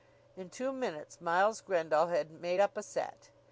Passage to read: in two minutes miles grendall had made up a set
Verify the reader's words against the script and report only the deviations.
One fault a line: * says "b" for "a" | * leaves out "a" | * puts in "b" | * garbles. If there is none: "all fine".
all fine